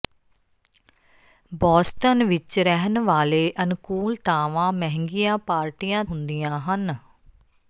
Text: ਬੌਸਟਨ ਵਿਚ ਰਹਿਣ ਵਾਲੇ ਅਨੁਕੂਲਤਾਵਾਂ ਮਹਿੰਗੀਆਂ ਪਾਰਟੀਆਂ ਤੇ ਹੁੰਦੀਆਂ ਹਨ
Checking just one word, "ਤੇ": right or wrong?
wrong